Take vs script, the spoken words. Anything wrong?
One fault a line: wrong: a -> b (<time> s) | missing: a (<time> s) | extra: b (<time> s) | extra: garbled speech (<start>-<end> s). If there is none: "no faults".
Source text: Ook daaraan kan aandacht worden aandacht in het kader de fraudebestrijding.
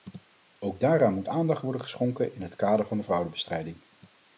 wrong: kan -> moet (1.1 s)
wrong: aandacht -> geschonken (1.8 s)
extra: van (2.8 s)